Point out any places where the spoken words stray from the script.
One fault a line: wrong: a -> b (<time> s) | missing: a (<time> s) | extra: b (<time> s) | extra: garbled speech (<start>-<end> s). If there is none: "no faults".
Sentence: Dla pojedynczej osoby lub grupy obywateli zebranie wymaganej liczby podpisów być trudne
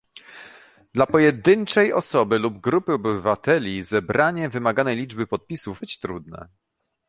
no faults